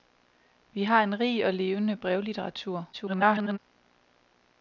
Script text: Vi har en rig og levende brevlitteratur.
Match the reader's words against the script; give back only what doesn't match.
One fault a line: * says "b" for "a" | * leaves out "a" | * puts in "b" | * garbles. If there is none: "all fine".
* garbles